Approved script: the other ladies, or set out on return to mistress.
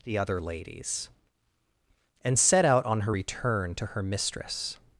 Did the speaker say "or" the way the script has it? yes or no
no